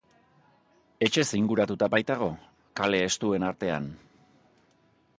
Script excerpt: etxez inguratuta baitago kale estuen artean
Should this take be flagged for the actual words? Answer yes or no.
no